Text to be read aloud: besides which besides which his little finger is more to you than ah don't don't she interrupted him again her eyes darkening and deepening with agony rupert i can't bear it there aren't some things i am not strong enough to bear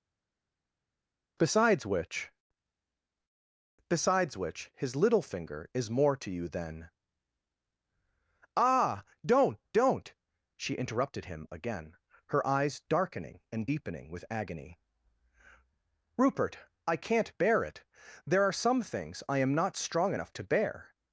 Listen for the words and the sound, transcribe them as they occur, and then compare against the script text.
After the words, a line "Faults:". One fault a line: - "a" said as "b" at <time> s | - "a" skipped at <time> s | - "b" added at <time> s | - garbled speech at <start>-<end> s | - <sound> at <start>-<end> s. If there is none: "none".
besides which besides which his little finger is more to you than ah don't don't she interrupted him again her eyes darkening and deepening with agony rupert i can't bear it there are some things i am not strong enough to bear
Faults:
- "aren't" said as "are" at 18.4 s